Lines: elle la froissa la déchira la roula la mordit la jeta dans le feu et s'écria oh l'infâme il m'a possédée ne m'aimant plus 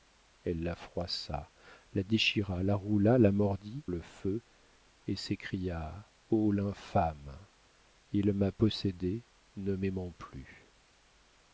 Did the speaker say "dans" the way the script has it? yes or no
no